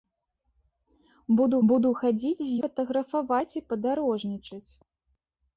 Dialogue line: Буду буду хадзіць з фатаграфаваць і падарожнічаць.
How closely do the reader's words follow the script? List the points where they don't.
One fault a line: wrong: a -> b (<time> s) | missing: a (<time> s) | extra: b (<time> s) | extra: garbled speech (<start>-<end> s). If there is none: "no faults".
no faults